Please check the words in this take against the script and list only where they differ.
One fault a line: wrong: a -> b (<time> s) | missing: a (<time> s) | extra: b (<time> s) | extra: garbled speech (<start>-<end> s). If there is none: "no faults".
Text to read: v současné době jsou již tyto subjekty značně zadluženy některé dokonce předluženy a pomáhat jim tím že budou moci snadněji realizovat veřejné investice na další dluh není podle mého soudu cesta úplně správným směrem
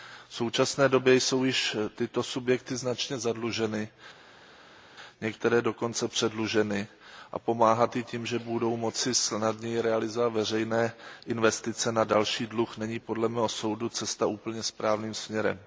no faults